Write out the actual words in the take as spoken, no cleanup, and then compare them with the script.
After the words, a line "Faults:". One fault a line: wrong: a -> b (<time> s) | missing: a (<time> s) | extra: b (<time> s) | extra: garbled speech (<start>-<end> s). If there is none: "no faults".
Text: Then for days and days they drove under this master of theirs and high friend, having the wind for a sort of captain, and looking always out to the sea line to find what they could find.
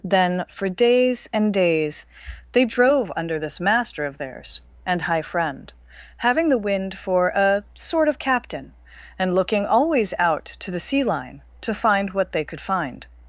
Then for days and days they drove under this master of theirs and high friend, having the wind for a sort of captain, and looking always out to the sea line to find what they could find.
Faults:
no faults